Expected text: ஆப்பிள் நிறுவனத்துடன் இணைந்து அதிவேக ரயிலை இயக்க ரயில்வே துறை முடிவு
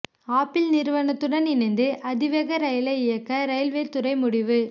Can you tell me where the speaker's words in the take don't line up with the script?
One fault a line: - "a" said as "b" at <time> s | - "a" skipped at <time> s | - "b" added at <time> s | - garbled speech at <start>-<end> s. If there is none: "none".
none